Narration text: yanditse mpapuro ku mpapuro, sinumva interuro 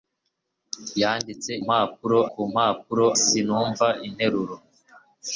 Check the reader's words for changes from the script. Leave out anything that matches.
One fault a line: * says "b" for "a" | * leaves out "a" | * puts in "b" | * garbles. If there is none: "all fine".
all fine